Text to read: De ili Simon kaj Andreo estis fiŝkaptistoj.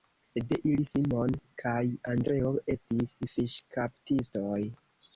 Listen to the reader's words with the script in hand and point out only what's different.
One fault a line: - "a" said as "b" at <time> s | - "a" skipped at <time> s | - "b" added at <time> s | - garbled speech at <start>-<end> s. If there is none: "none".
none